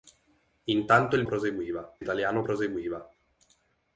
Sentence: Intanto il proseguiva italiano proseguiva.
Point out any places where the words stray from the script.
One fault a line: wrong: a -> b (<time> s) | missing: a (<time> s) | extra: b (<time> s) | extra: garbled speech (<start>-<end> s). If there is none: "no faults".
no faults